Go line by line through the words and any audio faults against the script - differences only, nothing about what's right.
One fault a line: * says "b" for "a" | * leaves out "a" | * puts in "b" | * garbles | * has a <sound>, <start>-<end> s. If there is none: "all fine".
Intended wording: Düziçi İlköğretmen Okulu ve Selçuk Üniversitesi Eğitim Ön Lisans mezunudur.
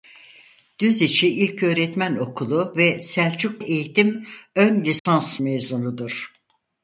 * leaves out "Üniversitesi"
* has a dropout, 5.0-5.1 s